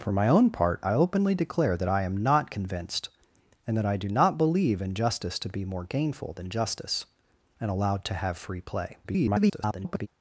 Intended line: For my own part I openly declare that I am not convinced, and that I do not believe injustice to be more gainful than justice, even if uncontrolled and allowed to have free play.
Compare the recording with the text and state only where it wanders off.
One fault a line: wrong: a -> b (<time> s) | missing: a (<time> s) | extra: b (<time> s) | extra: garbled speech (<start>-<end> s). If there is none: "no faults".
missing: even if uncontrolled (7.0 s)
extra: garbled speech (9.0-10.1 s)